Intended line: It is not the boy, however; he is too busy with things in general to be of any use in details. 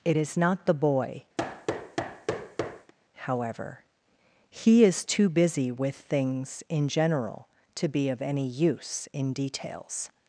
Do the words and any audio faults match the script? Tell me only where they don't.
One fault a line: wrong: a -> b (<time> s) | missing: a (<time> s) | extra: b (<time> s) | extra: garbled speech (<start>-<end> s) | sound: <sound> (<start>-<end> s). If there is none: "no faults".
sound: thud (1.4-2.9 s)